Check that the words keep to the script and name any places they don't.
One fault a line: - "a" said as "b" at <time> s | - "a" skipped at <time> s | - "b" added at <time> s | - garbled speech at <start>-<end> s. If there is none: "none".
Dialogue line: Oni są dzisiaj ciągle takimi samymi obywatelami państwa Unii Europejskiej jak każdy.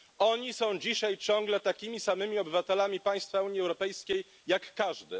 none